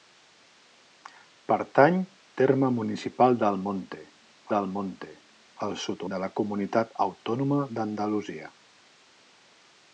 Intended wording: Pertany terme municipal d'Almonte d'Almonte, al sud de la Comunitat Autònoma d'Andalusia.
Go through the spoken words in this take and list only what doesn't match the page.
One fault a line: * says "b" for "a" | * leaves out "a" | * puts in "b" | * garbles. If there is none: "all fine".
all fine